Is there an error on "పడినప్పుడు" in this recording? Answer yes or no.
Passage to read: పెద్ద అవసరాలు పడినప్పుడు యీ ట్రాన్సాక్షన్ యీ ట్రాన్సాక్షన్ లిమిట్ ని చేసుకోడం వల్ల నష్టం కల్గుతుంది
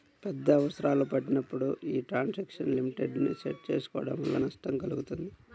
no